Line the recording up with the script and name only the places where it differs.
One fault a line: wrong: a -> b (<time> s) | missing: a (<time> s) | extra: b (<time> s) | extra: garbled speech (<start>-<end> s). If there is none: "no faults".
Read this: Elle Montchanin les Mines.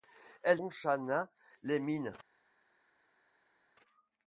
no faults